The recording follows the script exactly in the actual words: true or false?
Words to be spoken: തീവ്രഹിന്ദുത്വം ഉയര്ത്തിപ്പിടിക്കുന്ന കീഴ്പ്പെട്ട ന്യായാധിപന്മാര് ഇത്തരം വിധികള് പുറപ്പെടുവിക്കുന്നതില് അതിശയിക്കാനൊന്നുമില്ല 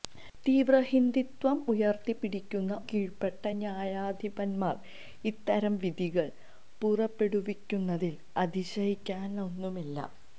true